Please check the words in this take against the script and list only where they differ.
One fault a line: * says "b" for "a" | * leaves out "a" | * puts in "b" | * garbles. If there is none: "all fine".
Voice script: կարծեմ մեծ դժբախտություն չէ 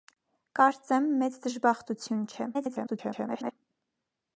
* garbles